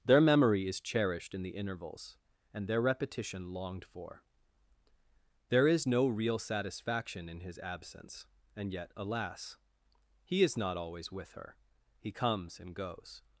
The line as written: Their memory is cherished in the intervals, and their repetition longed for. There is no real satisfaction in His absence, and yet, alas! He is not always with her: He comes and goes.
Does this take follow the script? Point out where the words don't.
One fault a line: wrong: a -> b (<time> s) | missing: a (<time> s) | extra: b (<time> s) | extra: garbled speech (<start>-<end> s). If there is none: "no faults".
no faults